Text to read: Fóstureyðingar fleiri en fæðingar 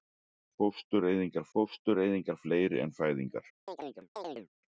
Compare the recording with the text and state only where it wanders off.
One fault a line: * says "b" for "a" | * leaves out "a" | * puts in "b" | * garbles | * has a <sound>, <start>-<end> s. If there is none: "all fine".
* puts in "fóstureyðingar"
* has a chirp, 3.7-4.5 s